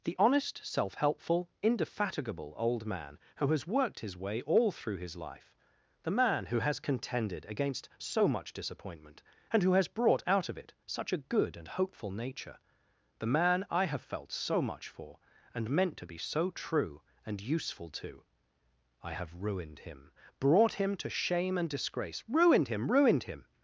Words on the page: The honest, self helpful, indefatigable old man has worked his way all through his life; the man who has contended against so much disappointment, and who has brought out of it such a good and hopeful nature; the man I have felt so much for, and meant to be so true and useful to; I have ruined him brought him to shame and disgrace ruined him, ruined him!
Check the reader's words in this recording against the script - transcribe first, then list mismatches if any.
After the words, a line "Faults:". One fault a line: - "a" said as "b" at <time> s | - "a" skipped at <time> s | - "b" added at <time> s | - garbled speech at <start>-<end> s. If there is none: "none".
The honest, self helpful, indefatigable old man who has worked his way all through his life; the man who has contended against so much disappointment, and who has brought out of it such a good and hopeful nature; the man I have felt so much for, and meant to be so true and useful to; I have ruined him brought him to shame and disgrace ruined him, ruined him!
Faults:
- "who" added at 3.4 s